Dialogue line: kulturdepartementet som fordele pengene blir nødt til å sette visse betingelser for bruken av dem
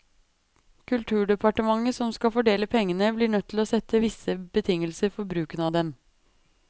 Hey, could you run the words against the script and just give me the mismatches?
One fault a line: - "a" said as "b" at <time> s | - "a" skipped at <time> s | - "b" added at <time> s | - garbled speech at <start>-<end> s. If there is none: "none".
- "skal" added at 2.1 s